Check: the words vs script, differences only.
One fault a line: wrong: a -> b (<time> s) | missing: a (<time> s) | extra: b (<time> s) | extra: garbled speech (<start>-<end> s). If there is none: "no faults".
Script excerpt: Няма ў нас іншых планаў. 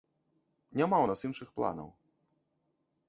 no faults